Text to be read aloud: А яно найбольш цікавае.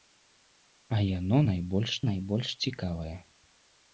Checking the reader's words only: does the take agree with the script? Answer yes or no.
no